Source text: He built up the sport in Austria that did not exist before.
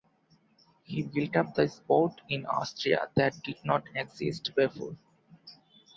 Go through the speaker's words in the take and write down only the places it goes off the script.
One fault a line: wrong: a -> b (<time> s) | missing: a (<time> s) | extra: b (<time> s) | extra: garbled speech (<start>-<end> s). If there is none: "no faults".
no faults